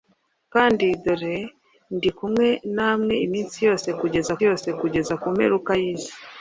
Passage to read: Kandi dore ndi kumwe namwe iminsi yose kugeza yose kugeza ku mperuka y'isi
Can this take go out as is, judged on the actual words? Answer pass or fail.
pass